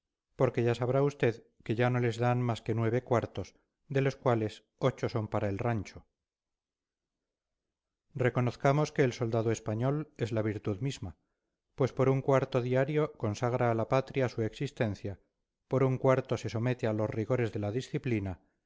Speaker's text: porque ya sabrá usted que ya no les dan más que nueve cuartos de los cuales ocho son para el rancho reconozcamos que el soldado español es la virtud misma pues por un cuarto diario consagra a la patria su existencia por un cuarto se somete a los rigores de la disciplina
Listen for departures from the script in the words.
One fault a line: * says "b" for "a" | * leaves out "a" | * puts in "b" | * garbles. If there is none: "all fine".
all fine